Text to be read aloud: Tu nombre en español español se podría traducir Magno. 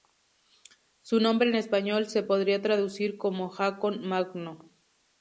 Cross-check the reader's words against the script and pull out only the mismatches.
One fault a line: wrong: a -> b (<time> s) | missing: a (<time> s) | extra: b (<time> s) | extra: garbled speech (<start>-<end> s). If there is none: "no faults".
wrong: Tu -> Su (1.0 s)
missing: español (2.1 s)
extra: como Haakon (3.2 s)